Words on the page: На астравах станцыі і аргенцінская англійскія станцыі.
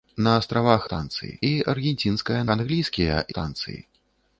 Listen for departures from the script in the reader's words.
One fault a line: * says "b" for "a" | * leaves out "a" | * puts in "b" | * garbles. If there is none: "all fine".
all fine